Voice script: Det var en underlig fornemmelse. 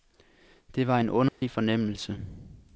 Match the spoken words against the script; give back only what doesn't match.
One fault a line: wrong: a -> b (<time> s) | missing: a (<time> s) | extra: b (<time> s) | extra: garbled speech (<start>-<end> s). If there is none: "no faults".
no faults